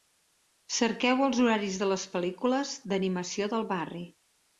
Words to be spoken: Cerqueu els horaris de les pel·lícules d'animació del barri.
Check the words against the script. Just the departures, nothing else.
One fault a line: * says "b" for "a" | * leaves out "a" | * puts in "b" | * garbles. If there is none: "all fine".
all fine